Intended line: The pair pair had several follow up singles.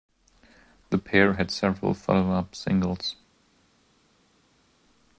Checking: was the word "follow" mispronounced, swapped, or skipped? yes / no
no